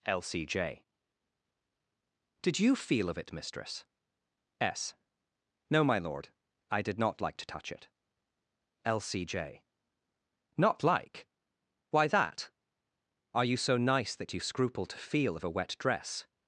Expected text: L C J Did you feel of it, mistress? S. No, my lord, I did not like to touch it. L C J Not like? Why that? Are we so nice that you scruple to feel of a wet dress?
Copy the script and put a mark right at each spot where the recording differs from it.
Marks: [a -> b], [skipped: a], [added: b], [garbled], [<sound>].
L C J Did you feel of it, mistress? S. No, my lord, I did not like to touch it. L C J Not like? Why that? Are [we -> you] so nice that you scruple to feel of a wet dress?